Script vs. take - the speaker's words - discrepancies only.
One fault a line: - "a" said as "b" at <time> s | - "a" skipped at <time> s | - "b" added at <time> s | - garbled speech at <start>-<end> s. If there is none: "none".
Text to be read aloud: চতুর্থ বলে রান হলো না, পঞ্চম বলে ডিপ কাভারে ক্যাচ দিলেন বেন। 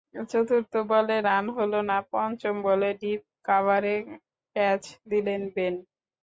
none